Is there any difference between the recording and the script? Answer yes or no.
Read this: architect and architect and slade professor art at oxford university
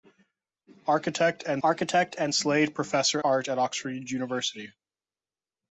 no